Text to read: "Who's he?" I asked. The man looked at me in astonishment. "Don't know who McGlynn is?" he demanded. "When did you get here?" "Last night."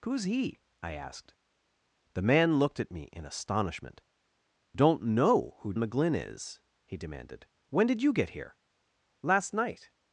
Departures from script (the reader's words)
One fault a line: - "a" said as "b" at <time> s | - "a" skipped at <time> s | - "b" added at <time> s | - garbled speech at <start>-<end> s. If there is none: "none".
none